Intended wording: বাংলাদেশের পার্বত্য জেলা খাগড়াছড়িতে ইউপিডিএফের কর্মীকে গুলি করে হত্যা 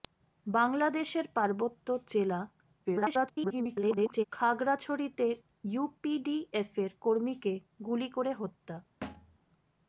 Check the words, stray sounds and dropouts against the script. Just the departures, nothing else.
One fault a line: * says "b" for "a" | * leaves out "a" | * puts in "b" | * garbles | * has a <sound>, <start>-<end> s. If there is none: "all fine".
* garbles
* has a thud, 9.0-9.4 s